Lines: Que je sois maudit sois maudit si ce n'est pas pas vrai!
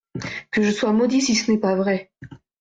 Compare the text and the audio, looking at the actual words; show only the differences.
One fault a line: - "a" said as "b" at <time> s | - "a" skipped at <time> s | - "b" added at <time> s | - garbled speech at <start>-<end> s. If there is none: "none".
- "sois maudit" skipped at 1.2 s
- "pas" skipped at 1.8 s